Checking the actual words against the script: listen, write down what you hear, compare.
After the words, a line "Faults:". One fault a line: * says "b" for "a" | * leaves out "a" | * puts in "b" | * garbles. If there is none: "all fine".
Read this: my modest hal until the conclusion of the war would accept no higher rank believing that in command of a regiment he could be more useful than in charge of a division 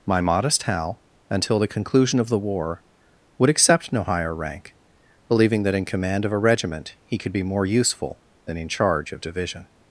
my modest hal until the conclusion of the war would accept no higher rank believing that in command of a regiment he could be more useful than in charge of division
Faults:
* leaves out "a"